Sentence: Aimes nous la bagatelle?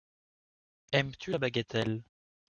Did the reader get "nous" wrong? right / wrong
wrong